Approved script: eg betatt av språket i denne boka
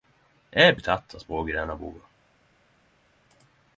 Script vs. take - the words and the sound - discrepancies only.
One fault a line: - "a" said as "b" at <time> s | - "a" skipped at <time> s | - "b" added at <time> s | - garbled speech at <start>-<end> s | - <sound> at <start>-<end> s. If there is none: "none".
none